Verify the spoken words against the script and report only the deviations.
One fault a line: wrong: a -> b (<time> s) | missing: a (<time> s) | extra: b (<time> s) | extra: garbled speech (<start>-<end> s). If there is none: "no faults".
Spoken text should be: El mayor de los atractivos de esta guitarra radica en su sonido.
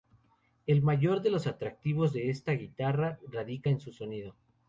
no faults